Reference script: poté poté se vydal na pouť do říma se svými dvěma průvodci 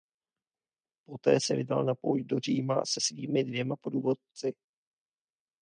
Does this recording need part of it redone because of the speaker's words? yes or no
yes